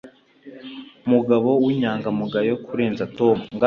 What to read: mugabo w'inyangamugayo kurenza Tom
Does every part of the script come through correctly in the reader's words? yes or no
yes